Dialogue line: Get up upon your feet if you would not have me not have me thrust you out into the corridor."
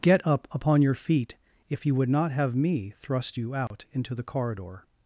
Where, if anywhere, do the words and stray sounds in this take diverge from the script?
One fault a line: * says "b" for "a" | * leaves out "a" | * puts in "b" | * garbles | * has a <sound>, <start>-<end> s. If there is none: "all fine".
* leaves out "not have me"
* has a dropout, 3.7-3.7 s